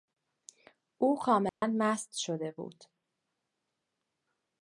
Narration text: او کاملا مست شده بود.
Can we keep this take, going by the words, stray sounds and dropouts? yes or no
no